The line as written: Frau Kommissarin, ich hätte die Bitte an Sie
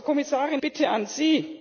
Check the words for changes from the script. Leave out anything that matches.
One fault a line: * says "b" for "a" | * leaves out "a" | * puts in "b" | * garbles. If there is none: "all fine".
* leaves out "ich hätte die"